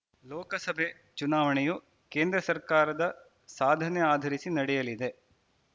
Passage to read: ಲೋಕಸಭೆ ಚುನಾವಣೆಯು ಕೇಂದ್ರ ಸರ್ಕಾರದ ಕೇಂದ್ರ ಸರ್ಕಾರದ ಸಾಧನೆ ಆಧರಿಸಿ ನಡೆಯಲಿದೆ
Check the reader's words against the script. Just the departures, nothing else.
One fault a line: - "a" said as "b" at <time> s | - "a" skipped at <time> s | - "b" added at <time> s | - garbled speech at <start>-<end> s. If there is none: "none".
- "ಕೇಂದ್ರ ಸರ್ಕಾರದ" skipped at 3.0 s